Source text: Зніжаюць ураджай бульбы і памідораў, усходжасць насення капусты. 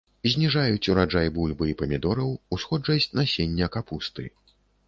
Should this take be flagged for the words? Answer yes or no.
no